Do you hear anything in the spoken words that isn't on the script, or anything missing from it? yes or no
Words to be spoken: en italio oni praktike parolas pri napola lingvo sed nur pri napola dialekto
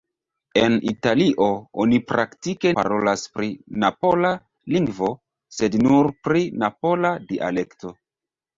no